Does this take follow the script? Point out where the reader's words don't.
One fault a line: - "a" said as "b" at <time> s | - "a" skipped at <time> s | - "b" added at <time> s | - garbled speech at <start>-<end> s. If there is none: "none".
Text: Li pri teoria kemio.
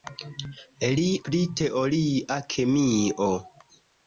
none